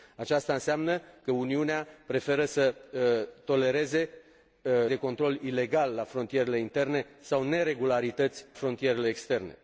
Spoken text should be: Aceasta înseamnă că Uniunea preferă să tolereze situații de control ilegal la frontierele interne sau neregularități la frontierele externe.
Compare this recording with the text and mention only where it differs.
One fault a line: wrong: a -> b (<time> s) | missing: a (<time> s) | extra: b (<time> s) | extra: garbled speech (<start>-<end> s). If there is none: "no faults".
missing: situații (4.1 s)
missing: la (8.4 s)